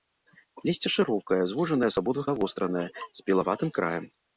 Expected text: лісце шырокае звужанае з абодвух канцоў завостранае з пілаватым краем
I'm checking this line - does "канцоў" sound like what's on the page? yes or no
no